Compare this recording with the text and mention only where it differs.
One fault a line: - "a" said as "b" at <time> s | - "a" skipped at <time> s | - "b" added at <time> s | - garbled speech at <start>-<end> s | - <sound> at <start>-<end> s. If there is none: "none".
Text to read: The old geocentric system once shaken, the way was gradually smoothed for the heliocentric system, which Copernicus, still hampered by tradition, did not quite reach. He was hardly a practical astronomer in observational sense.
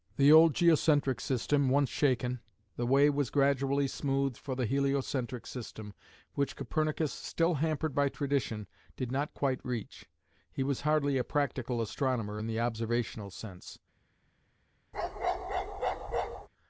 - "the" added at 12.5 s
- bark at 14.9-16.5 s